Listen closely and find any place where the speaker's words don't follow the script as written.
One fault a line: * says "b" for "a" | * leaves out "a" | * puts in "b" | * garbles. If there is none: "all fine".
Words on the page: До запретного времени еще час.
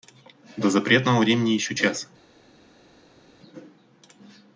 all fine